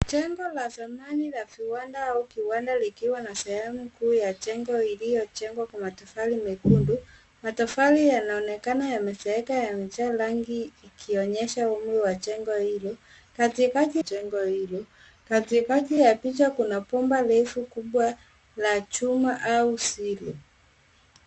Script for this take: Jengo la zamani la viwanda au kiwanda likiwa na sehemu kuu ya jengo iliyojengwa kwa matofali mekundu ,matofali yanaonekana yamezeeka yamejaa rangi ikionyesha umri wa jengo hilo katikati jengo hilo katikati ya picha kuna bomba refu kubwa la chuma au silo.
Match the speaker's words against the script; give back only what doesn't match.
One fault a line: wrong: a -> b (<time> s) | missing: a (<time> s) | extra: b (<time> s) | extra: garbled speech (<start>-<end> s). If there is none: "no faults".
no faults